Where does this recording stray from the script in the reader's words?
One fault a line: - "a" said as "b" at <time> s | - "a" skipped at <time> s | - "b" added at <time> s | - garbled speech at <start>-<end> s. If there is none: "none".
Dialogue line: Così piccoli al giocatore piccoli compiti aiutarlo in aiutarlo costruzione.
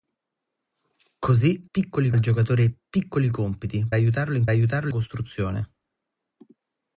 none